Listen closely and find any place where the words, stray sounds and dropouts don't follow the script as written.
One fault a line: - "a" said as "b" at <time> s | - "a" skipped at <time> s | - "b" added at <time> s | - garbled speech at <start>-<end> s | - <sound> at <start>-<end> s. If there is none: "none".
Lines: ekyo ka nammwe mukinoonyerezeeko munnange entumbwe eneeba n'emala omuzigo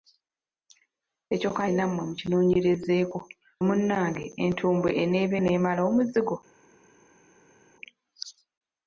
none